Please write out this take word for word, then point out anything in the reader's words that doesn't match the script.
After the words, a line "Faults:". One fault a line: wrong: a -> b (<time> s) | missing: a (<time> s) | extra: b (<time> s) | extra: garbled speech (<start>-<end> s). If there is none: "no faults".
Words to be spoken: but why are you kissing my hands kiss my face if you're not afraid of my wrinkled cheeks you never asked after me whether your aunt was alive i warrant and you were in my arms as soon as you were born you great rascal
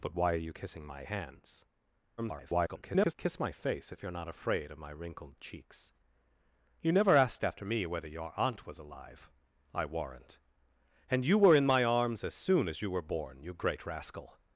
but why are you kissing my hands [garbled] kiss my face if you're not afraid of my wrinkled cheeks you never asked after me whether your aunt was alive i warrant and you were in my arms as soon as you were born you great rascal
Faults:
extra: garbled speech (2.2-3.1 s)